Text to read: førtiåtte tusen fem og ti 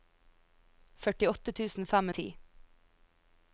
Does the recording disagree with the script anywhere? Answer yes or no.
no